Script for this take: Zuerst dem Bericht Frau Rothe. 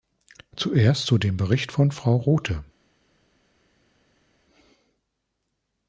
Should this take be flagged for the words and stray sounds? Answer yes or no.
yes